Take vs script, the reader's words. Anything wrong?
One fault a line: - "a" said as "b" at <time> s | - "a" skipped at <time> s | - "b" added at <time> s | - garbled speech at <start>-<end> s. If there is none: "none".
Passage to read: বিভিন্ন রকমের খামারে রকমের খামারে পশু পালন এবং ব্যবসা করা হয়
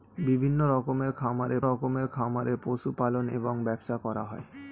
none